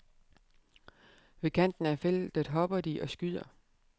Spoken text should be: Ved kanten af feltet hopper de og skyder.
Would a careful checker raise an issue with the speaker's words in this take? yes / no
no